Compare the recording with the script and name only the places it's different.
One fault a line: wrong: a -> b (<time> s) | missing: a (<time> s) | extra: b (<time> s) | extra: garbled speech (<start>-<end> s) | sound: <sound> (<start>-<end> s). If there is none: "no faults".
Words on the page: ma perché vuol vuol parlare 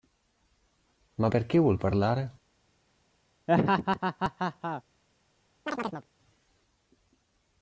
missing: vuol (1.8 s)
sound: laugh (3.5-4.8 s)
sound: chirp (5.7-6.1 s)